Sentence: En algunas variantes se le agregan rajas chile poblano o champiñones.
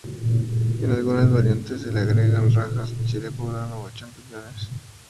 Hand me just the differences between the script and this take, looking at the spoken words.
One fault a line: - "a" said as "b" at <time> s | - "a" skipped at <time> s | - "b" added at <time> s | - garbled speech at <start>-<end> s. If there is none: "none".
none